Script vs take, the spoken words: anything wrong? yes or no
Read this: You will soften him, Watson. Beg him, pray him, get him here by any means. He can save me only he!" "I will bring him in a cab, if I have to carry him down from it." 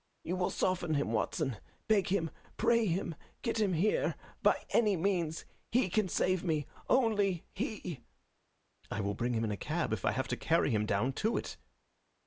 yes